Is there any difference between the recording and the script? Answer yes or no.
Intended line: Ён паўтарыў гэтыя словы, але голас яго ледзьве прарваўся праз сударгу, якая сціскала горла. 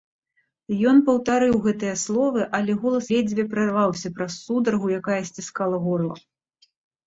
yes